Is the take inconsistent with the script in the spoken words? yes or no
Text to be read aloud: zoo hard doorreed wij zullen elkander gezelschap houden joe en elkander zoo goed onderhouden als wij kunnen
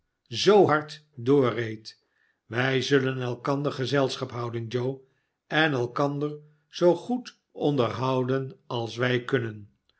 no